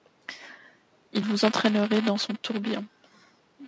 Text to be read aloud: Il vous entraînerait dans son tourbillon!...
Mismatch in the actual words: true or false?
false